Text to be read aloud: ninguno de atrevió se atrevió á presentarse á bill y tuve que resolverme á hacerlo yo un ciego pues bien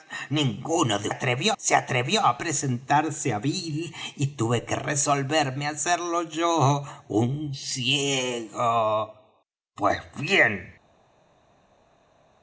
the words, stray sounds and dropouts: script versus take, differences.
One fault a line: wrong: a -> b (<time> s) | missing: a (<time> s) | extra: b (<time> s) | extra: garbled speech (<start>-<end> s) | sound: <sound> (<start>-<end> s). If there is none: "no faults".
no faults